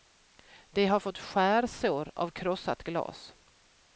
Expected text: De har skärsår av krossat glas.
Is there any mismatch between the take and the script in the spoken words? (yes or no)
yes